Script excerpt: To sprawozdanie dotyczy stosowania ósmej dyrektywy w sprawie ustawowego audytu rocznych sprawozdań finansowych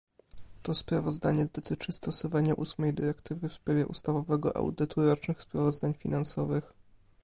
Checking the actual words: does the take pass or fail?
pass